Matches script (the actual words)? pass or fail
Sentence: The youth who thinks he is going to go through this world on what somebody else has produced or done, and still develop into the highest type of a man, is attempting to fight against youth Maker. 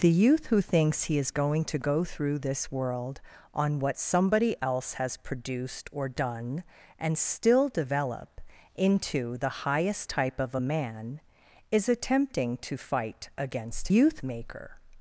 pass